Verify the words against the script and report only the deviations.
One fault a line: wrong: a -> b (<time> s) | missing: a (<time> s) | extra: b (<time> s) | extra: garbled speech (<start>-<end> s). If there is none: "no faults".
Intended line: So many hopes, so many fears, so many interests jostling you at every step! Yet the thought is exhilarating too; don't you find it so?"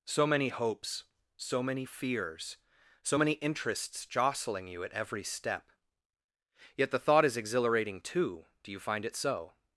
wrong: don't -> do (8.6 s)